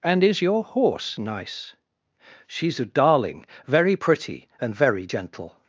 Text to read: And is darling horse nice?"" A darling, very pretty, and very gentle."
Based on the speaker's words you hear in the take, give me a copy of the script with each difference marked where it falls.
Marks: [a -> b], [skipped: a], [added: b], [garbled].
And is [darling -> your] horse nice?"" [added: She's] A darling, very pretty, and very gentle."